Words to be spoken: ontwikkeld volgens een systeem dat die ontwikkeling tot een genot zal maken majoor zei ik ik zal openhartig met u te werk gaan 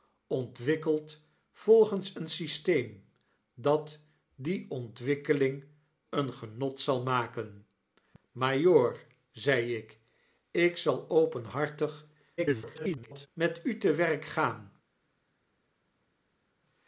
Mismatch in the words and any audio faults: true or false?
true